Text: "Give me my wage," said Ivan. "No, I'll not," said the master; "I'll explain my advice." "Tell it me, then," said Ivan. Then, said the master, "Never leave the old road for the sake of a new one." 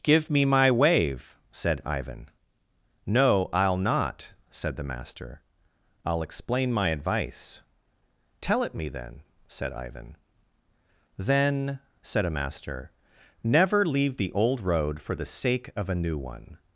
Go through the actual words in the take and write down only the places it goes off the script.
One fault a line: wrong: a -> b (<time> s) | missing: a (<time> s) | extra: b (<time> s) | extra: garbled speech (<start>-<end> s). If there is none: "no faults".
wrong: wage -> wave (0.7 s)
wrong: the -> a (12.2 s)